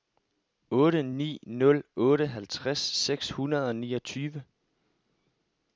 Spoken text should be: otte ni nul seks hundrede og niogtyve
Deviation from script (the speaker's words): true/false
true